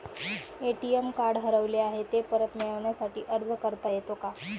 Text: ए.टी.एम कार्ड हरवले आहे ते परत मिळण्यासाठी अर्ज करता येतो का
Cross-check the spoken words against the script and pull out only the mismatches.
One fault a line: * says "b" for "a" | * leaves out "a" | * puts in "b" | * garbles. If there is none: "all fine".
all fine